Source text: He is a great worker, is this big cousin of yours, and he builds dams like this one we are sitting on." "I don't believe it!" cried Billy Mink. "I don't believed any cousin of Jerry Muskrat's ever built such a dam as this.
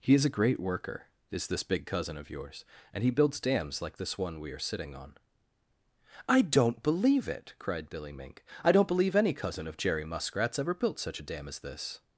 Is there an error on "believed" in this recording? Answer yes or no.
yes